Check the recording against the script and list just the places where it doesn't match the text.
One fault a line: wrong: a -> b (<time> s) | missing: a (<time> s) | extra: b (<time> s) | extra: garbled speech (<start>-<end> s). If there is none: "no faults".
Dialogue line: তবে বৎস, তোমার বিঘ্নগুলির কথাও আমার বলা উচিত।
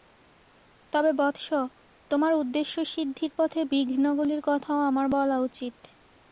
extra: উদ্দেশ্যসিদ্ধির পথে (2.3 s)